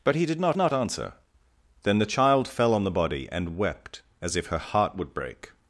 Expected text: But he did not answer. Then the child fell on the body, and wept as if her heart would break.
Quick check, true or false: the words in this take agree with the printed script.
false